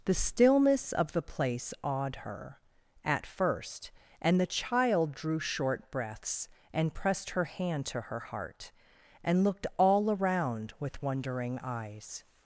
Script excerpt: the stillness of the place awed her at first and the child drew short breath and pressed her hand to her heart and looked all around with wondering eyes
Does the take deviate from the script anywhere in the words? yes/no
yes